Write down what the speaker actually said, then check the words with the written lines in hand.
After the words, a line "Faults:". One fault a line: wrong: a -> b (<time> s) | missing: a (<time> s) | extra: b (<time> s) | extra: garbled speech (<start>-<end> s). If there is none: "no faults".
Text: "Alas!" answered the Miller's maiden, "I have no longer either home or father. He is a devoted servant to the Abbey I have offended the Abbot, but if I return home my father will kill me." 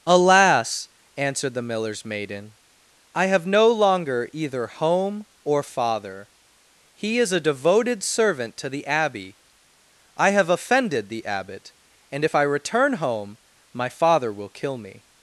"Alas!" answered the Miller's maiden, "I have no longer either home or father. He is a devoted servant to the Abbey I have offended the Abbot, and if I return home my father will kill me."
Faults:
wrong: but -> and (12.1 s)